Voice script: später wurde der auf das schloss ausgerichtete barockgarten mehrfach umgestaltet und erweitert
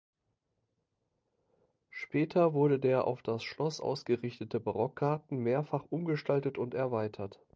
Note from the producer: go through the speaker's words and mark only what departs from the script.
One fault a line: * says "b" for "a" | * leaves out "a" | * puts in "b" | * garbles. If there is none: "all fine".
all fine